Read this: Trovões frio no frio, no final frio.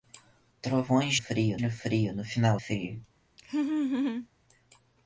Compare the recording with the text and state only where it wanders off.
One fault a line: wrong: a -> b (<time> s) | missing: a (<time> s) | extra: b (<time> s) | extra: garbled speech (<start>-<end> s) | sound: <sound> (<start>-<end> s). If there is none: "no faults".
sound: laugh (3.4-4.3 s)